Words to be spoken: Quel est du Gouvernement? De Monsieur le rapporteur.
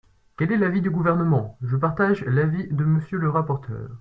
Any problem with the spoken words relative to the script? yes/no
yes